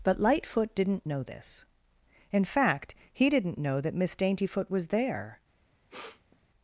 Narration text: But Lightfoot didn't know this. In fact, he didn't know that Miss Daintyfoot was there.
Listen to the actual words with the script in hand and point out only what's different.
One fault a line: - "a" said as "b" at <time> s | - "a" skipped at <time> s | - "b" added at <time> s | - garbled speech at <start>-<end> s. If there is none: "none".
none